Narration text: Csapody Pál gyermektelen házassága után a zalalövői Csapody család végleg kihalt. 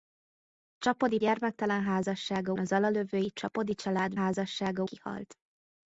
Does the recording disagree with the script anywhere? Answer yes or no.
yes